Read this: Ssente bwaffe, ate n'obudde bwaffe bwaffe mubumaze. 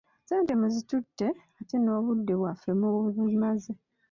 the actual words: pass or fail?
fail